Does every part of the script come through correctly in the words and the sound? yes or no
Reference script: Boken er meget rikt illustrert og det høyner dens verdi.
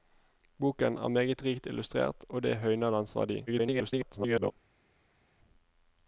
no